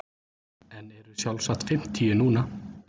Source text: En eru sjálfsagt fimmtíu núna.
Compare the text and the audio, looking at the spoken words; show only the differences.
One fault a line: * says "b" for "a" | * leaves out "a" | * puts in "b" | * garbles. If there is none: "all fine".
all fine